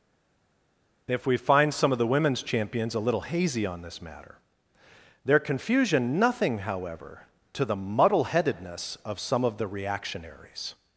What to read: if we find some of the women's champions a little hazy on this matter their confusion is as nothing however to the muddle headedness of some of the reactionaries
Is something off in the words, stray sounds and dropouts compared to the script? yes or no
yes